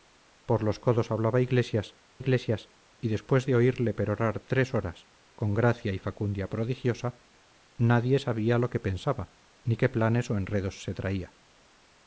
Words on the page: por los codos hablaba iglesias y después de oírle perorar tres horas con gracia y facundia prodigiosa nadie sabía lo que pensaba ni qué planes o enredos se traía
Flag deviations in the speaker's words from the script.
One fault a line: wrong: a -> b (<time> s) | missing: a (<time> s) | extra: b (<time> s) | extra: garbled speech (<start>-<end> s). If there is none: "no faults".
extra: iglesias (2.2 s)